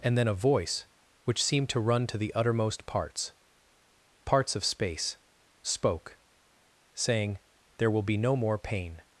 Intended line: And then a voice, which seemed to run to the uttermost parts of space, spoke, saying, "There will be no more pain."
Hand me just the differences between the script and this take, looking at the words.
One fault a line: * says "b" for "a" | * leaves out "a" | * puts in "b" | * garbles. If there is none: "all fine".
* puts in "parts"